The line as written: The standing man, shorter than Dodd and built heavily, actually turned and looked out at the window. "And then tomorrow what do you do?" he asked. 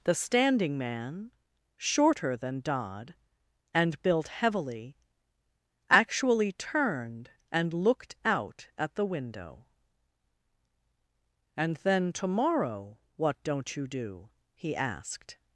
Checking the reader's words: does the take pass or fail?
fail